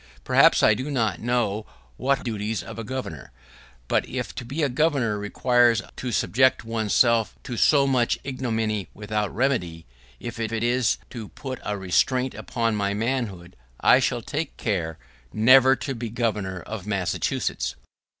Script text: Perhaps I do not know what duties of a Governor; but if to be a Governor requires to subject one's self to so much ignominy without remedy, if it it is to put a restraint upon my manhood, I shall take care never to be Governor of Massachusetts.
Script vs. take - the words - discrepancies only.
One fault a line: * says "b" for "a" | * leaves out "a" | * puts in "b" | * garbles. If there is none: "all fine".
all fine